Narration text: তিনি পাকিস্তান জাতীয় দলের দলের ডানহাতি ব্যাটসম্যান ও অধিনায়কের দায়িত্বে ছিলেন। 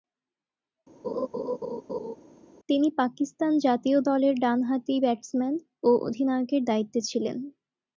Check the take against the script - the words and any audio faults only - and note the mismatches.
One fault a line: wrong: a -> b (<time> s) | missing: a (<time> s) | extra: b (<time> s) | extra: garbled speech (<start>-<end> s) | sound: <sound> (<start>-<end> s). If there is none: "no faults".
sound: laugh (1.0-2.2 s)
missing: দলের (4.3 s)